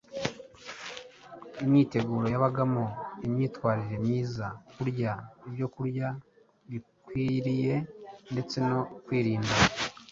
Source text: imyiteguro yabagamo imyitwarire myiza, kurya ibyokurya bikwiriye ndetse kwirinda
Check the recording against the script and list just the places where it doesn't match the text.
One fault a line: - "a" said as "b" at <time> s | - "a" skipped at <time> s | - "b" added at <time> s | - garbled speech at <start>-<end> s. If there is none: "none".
- "no" added at 8.7 s